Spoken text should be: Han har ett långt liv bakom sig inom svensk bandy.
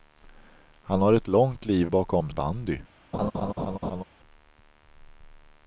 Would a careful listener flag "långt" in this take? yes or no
no